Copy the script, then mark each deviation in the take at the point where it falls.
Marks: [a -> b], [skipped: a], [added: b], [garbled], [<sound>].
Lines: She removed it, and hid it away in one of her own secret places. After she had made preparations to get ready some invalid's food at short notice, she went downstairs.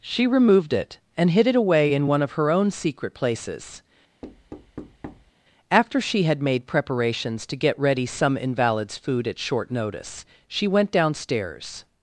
She removed it, and hid it away in one of her own secret places. [thud] After she had made preparations to get ready some invalid's food at short notice, she went downstairs.